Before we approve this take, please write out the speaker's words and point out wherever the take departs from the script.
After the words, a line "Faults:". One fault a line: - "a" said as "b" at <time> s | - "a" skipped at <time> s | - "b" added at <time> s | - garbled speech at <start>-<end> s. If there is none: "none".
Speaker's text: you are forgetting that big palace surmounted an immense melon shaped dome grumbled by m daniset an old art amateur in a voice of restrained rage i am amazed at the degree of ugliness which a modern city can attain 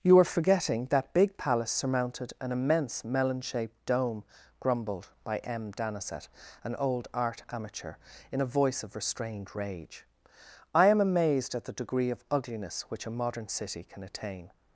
you are forgetting that big palace surmounted an immense melon shaped dome grumbled by m daniset an old art amateur in a voice of restrained rage i am amazed at the degree of ugliness which a modern city can attain
Faults:
none